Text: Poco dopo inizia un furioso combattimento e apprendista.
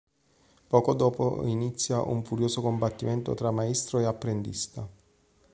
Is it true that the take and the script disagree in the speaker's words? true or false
true